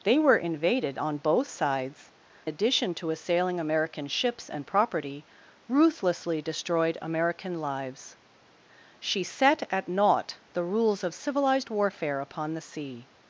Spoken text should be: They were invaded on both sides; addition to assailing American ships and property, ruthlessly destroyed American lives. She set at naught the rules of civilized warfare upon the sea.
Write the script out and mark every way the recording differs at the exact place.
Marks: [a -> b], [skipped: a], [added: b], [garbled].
They were invaded on both sides; addition to assailing American ships and property, ruthlessly destroyed American lives. She set at naught the rules of civilized warfare upon the sea.